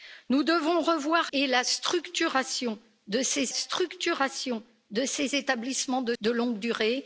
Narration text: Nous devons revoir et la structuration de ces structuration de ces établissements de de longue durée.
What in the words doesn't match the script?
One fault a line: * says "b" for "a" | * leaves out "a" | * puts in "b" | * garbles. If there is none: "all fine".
all fine